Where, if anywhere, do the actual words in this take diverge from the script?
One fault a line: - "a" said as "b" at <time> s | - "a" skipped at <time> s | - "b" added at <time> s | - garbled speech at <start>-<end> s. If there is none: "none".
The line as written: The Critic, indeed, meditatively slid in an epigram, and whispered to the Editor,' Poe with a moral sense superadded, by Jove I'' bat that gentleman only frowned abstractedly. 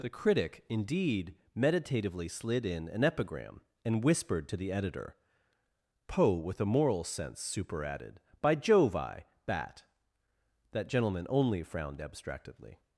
none